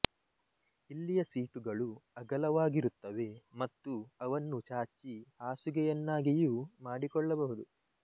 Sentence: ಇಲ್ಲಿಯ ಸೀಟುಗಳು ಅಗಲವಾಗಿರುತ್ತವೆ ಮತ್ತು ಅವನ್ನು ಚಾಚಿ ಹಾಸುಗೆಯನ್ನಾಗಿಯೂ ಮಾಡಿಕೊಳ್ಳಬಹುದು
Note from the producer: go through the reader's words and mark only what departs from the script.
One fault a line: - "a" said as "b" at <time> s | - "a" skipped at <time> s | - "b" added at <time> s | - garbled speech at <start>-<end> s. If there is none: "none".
none